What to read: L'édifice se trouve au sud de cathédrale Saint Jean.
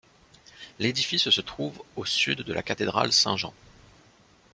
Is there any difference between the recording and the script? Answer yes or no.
yes